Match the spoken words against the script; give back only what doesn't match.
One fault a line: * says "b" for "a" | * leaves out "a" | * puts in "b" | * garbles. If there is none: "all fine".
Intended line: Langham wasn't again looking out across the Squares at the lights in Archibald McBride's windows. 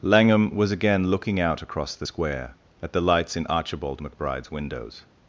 * says "was" for "wasn't"
* says "Square" for "Squares"